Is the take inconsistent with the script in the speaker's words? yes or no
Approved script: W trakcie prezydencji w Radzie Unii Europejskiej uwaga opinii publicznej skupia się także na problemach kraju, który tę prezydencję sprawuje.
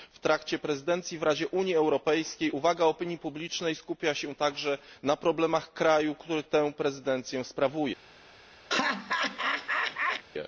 no